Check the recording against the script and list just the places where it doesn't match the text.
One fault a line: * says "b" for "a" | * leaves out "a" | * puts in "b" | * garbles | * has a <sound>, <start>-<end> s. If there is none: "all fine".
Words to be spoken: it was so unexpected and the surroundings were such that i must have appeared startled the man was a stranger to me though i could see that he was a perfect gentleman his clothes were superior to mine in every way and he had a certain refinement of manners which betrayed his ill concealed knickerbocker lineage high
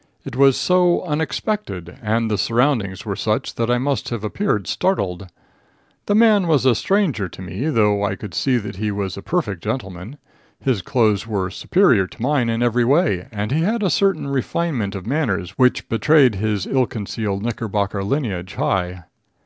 all fine